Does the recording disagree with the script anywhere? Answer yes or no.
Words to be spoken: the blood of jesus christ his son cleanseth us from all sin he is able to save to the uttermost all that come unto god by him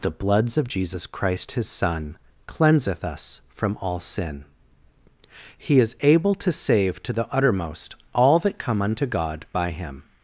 yes